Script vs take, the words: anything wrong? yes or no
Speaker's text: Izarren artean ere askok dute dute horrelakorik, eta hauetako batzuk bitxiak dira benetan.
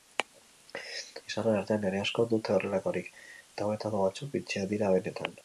yes